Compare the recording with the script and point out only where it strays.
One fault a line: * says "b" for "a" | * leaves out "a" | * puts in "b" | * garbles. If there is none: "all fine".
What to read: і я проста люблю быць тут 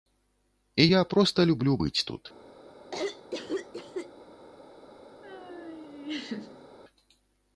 all fine